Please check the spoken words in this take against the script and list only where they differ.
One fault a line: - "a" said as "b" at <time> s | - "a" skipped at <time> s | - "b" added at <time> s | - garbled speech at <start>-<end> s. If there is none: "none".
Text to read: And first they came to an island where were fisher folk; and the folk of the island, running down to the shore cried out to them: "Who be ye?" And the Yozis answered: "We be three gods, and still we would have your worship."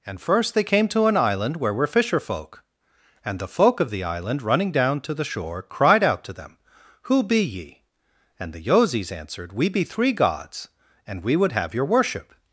- "still" skipped at 11.2 s